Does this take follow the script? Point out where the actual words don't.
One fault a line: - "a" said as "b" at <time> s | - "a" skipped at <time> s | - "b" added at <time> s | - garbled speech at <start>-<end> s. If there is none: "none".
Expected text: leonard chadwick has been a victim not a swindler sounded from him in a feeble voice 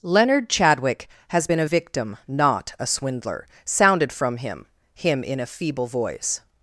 - "him" added at 5.0 s